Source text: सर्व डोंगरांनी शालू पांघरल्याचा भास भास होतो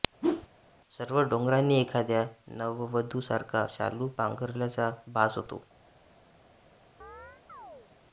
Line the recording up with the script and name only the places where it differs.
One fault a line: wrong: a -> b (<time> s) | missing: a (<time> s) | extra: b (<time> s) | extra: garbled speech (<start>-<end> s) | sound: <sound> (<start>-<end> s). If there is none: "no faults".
sound: whoosh (0.2-0.5 s)
extra: एखाद्या नववधूसारखा (1.8 s)
missing: भास (5.4 s)
sound: chirp (7.0-7.9 s)